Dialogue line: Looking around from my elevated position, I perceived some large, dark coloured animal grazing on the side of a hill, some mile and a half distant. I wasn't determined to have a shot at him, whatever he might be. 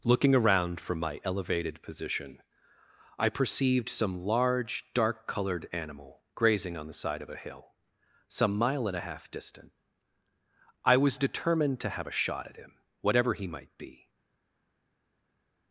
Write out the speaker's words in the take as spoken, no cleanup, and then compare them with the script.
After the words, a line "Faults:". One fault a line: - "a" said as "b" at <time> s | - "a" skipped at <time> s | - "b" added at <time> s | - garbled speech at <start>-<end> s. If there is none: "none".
Looking around from my elevated position, I perceived some large, dark coloured animal grazing on the side of a hill, some mile and a half distant. I was determined to have a shot at him, whatever he might be.
Faults:
- "wasn't" said as "was" at 11.0 s